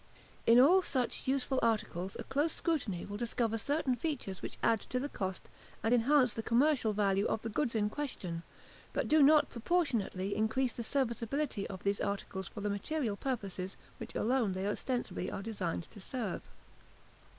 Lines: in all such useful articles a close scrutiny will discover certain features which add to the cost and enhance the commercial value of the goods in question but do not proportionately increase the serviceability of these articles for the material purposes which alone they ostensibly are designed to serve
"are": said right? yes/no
yes